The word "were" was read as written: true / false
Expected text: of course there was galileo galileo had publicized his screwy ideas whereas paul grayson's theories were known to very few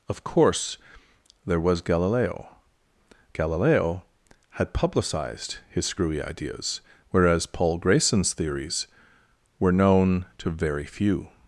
true